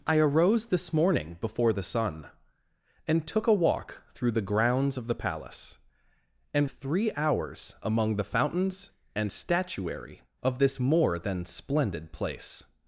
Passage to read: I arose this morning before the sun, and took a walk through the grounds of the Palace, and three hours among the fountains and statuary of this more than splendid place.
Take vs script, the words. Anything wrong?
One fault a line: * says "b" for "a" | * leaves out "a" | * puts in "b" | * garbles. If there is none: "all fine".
all fine